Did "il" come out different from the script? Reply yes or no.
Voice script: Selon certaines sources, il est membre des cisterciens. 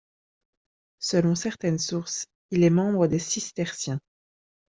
no